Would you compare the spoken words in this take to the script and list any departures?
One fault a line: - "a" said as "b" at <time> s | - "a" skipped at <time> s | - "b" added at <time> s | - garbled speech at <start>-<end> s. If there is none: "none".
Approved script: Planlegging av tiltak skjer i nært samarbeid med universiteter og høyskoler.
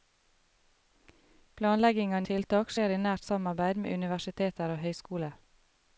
none